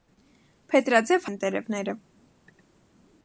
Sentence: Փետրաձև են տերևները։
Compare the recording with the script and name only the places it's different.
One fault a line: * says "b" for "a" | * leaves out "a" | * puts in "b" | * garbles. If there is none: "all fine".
all fine